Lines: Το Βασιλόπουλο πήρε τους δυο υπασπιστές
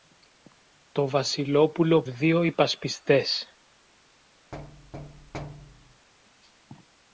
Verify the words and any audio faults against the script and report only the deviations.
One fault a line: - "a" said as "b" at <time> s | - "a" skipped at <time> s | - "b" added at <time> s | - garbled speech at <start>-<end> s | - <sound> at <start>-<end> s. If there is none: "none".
- "πήρε τους" skipped at 2.0 s
- thud at 4.5-6.1 s